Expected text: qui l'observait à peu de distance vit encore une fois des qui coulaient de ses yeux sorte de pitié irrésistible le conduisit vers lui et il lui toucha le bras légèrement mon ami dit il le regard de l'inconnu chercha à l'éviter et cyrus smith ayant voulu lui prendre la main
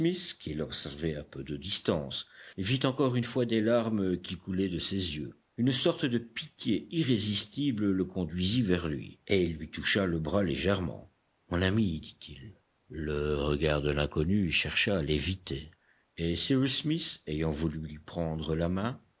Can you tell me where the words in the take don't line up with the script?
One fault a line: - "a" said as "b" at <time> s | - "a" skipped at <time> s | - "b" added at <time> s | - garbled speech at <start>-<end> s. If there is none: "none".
- "larmes" added at 3.6 s
- "une" added at 5.6 s